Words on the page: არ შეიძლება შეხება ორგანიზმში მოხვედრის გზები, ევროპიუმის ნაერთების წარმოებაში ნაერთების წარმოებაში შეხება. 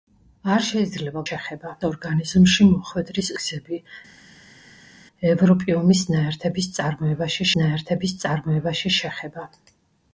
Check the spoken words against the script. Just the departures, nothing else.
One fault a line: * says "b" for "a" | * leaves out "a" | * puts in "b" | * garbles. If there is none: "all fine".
all fine